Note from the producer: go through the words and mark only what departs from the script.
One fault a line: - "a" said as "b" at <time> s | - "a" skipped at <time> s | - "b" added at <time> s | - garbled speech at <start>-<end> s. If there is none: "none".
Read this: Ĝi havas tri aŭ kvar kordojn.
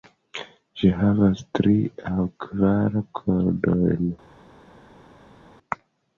none